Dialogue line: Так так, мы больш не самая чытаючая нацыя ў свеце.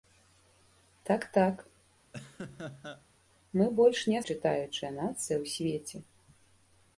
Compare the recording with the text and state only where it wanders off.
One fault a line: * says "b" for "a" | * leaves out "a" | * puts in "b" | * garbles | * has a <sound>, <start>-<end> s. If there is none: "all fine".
* has a laugh, 2.1-3.1 s
* leaves out "самая"